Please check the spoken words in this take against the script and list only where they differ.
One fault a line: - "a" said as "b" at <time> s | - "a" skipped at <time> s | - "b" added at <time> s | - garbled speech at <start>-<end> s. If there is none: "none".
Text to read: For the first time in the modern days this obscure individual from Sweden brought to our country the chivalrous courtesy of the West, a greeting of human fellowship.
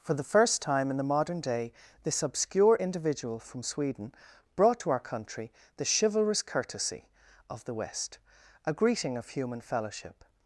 - "days" said as "day" at 1.4 s